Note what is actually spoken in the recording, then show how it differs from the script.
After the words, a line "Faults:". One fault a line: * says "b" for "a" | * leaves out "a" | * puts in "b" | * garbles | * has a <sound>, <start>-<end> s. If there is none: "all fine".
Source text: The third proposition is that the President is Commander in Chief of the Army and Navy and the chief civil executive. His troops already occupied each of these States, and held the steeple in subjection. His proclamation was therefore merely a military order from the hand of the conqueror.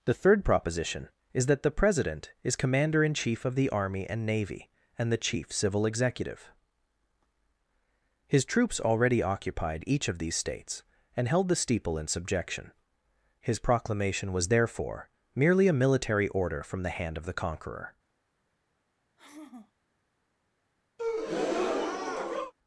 The third proposition is that the President is Commander in Chief of the Army and Navy and the chief civil executive. His troops already occupied each of these States, and held the steeple in subjection. His proclamation was therefore merely a military order from the hand of the conqueror.
Faults:
* has a sigh, 19.2-19.7 s
* has a breath, 21.0-22.5 s